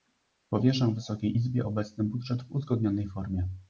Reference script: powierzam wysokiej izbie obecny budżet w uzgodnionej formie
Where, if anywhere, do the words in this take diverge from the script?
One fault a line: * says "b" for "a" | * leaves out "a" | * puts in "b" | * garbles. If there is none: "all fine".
all fine